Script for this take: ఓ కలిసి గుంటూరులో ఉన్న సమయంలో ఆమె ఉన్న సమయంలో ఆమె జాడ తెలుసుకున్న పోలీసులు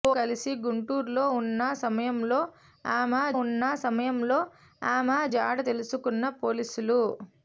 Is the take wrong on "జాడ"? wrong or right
right